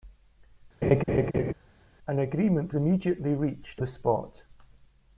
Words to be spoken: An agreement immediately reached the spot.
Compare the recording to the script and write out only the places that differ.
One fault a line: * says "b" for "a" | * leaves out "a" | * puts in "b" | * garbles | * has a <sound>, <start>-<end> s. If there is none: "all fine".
* has a laugh, 0.8-1.5 s